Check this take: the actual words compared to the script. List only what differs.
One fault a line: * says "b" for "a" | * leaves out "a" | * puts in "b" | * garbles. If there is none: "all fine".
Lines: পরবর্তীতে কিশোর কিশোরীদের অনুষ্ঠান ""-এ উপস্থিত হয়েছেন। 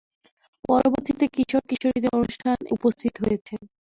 * leaves out "এ"